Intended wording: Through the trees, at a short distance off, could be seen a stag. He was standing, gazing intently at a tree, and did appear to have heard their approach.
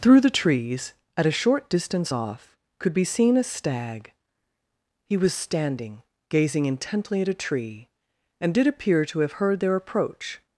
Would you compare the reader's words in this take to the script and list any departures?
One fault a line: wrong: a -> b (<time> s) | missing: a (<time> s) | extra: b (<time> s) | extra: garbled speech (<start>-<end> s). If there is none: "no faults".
no faults